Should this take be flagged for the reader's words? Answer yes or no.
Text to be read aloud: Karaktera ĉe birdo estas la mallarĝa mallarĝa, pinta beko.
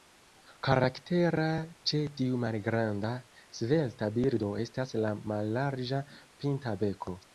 yes